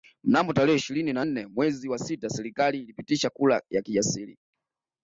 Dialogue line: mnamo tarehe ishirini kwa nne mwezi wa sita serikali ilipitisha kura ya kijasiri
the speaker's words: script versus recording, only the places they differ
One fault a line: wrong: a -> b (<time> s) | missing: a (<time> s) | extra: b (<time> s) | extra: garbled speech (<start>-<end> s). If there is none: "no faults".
wrong: kwa -> na (1.1 s)